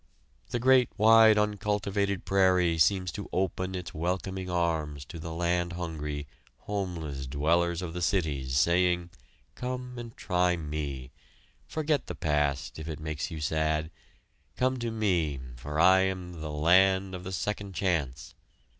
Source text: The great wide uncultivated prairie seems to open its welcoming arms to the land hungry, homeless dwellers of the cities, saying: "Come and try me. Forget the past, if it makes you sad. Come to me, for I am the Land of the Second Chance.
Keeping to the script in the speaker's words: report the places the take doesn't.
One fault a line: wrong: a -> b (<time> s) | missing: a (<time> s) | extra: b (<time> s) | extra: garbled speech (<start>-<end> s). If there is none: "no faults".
no faults